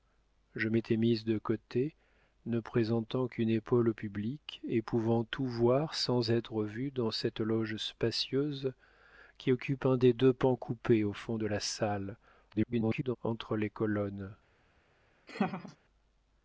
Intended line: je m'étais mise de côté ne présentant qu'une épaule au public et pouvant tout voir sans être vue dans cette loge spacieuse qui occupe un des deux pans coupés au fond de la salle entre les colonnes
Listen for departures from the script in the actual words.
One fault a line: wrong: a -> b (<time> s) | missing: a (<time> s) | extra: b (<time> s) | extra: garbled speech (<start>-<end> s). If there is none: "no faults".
extra: garbled speech (12.5-13.2 s)